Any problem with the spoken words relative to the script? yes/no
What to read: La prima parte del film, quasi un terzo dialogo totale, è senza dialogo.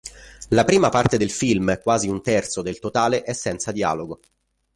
yes